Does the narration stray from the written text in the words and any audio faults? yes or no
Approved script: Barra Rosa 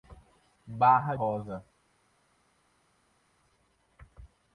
no